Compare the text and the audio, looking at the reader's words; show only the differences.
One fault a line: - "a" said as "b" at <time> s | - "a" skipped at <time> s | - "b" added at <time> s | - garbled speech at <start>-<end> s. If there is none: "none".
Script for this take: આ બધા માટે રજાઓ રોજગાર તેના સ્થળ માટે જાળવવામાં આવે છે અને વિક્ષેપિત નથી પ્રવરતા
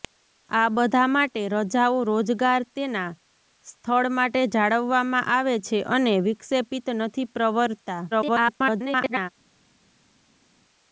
- garbled speech at 8.1-9.3 s